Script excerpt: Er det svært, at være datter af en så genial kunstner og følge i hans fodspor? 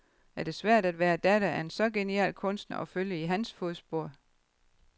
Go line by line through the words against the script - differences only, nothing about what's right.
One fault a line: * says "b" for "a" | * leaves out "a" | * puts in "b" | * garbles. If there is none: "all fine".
all fine